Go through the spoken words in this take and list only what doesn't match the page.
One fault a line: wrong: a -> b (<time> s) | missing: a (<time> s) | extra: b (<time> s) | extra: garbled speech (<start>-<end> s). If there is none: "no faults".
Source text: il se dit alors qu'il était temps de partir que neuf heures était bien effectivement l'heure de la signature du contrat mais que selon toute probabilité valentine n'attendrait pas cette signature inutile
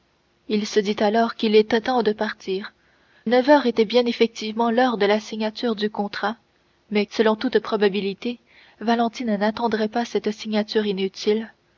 missing: que (2.7 s)
missing: que (7.0 s)